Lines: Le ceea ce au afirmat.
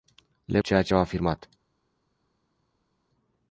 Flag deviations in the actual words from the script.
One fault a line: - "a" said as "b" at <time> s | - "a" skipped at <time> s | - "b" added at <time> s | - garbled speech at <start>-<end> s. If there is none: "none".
none